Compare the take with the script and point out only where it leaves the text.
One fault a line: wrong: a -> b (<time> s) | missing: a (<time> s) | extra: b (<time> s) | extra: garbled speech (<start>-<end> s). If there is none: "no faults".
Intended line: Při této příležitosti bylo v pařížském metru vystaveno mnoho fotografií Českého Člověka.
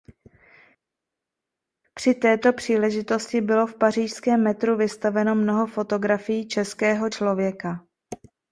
no faults